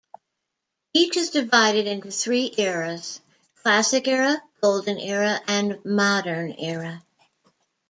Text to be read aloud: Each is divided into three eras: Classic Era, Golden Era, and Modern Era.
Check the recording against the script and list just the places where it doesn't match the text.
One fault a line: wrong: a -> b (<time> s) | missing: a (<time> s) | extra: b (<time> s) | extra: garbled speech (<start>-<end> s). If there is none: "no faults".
no faults